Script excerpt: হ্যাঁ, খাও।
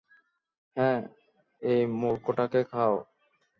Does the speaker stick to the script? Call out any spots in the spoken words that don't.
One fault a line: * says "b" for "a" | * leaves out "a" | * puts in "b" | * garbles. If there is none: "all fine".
* puts in "এই মূর্খটাকে"